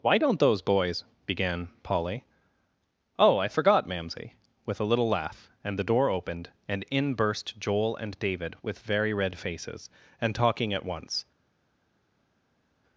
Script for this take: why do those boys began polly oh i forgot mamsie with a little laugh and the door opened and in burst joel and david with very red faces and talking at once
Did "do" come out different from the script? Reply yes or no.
yes